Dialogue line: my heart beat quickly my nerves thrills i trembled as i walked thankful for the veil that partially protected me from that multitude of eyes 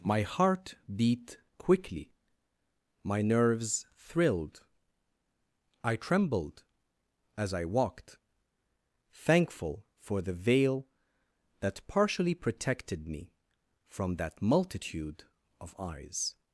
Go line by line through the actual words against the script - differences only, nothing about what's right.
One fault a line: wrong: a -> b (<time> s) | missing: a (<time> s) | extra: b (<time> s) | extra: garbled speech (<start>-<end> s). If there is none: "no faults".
wrong: thrills -> thrilled (4.0 s)